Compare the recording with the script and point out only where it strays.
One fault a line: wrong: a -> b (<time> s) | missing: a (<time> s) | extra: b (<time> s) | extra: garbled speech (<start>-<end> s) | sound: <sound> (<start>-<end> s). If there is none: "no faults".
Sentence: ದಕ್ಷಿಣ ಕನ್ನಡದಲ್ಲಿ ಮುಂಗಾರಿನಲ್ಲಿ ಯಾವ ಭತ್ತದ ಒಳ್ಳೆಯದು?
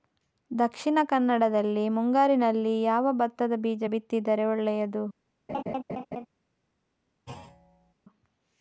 extra: ಬೀಜ ಬಿತ್ತಿದರೆ (3.6 s)
sound: laugh (5.5-6.3 s)
sound: thud (7.3-7.9 s)